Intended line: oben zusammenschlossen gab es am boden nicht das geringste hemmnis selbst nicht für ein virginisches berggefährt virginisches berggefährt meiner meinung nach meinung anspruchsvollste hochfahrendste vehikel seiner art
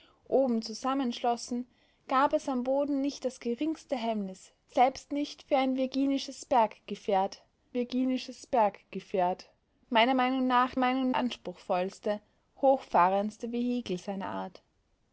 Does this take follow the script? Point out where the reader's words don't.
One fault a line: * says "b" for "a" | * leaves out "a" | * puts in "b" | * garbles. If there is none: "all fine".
all fine